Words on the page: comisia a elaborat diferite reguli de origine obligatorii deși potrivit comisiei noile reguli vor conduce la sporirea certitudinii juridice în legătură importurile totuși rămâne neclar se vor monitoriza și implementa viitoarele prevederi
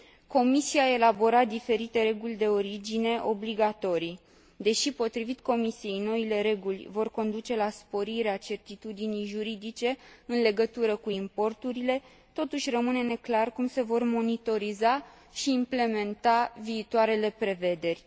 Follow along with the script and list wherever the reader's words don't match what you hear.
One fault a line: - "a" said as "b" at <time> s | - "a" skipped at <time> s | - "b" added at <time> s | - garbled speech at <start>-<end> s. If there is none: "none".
- "cu" added at 11.0 s
- "cum" added at 13.5 s